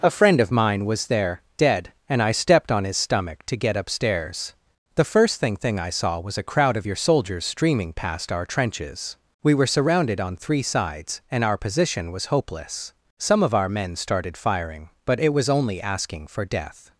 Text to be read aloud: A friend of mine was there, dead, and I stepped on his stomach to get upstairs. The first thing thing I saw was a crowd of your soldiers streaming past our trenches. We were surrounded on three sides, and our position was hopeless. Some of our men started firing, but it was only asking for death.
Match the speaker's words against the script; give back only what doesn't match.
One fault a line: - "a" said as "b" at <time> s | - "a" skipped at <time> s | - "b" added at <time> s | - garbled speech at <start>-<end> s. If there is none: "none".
none